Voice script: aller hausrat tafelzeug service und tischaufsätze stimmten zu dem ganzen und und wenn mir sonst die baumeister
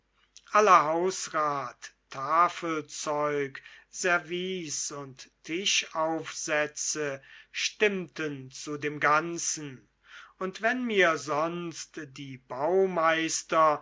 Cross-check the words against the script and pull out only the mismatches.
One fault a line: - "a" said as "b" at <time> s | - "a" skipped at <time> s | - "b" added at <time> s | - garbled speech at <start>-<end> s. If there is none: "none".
- "und" skipped at 10.6 s